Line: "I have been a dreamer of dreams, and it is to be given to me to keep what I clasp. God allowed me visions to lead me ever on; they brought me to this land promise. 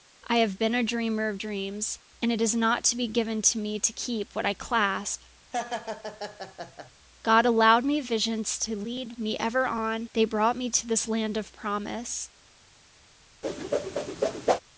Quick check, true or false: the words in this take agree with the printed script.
false